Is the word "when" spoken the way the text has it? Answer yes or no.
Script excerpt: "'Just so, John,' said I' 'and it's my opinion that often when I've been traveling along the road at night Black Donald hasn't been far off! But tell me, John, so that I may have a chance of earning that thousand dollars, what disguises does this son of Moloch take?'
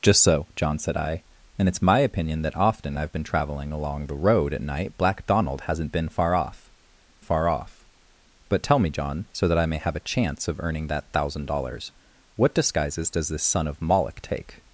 no